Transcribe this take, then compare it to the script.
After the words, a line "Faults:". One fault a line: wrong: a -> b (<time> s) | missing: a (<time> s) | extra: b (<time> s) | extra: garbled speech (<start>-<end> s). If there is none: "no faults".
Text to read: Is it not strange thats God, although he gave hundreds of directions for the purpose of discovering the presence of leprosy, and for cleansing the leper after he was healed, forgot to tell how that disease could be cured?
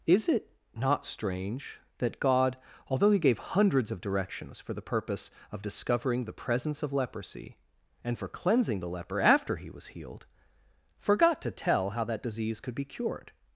Is it not strange that God, although he gave hundreds of directions for the purpose of discovering the presence of leprosy, and for cleansing the leper after he was healed, forgot to tell how that disease could be cured?
Faults:
wrong: thats -> that (2.0 s)